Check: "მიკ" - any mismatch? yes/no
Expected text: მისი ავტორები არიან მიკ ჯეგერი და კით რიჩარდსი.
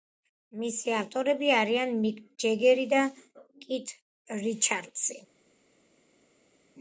no